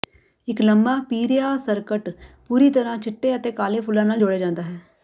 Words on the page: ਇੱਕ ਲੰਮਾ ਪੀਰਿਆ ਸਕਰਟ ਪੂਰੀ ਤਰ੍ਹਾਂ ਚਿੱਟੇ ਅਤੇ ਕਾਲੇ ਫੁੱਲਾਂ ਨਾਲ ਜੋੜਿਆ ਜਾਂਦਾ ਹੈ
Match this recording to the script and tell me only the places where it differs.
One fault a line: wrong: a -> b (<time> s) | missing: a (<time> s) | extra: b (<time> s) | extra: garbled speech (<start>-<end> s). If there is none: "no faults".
no faults